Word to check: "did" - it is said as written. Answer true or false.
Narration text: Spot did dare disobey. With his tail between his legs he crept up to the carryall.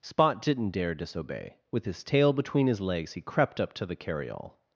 false